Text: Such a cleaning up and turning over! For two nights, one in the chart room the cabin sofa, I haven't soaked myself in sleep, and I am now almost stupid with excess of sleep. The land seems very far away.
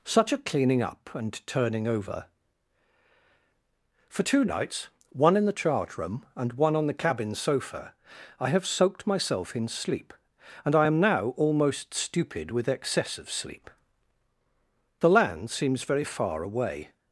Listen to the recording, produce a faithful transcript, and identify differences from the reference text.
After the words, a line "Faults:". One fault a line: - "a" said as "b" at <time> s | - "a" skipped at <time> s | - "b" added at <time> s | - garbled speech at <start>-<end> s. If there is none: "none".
Such a cleaning up and turning over! For two nights, one in the chart room and one on the cabin sofa, I have soaked myself in sleep, and I am now almost stupid with excess of sleep. The land seems very far away.
Faults:
- "and one on" added at 6.3 s
- "haven't" said as "have" at 8.5 s